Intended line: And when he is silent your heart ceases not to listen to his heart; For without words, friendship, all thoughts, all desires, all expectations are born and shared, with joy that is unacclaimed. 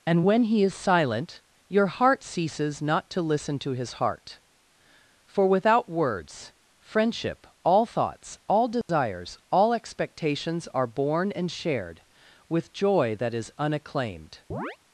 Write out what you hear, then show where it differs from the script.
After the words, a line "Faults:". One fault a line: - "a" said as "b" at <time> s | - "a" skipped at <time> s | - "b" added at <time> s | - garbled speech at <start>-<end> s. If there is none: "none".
And when he is silent your heart ceases not to listen to his heart; For without words, friendship, all thoughts, all desires, all expectations are born and shared, with joy that is unacclaimed.
Faults:
none